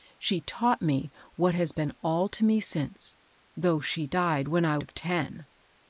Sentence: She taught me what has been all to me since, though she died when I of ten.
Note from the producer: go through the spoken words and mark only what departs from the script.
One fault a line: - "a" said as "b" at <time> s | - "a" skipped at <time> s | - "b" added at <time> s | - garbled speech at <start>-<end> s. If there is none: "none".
none